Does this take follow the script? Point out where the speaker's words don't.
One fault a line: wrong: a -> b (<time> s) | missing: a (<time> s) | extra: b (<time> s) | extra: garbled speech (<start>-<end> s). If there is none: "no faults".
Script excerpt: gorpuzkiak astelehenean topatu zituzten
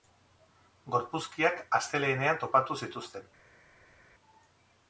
no faults